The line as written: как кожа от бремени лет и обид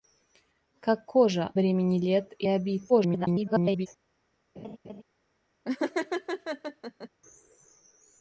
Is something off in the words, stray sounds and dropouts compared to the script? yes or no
yes